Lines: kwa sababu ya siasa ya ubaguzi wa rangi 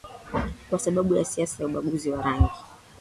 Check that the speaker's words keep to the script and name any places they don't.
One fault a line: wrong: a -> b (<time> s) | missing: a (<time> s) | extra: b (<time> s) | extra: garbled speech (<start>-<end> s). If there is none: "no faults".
no faults